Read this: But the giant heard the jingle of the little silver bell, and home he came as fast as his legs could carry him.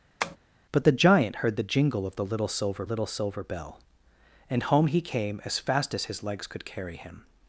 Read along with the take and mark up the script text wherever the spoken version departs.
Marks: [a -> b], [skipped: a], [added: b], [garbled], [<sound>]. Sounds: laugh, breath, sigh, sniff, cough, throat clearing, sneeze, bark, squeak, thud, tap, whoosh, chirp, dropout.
[tap] But the giant heard the jingle of the little silver [added: little silver] bell, and home he came as fast as his legs could carry him.